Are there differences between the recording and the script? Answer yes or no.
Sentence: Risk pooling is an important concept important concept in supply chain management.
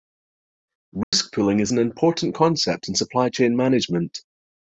yes